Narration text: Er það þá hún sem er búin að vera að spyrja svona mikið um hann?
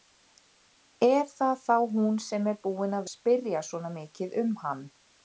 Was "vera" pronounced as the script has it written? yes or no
no